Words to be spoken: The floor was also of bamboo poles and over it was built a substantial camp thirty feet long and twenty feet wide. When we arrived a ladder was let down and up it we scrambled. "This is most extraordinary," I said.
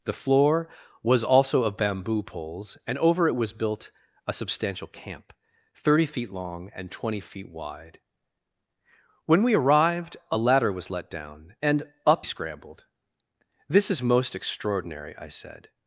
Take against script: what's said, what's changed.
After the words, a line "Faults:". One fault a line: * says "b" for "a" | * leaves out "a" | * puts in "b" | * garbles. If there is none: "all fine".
The floor was also of bamboo poles and over it was built a substantial camp thirty feet long and twenty feet wide. When we arrived a ladder was let down and up scrambled. "This is most extraordinary," I said.
Faults:
* leaves out "it we"